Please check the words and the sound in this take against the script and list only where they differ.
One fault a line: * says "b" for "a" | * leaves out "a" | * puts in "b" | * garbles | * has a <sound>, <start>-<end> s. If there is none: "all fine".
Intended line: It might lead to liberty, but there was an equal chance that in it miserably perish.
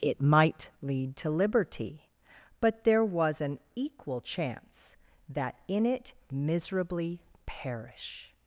all fine